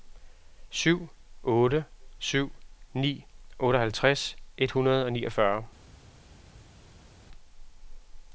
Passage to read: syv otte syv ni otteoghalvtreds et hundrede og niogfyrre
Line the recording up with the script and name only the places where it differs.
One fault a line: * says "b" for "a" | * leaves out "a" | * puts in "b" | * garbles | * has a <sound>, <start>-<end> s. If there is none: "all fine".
all fine